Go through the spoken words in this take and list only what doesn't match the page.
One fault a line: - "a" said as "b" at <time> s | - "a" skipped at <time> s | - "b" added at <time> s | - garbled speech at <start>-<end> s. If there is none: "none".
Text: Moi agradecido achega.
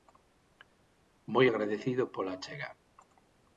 - "pola" added at 2.1 s